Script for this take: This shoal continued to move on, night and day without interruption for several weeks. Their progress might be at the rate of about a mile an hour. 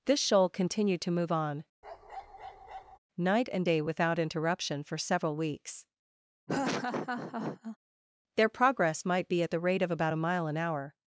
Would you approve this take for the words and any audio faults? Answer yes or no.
no